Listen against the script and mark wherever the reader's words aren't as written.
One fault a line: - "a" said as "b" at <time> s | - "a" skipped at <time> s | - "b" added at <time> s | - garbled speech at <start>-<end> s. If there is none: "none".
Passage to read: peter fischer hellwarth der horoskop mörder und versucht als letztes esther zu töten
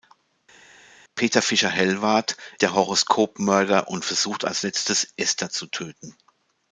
none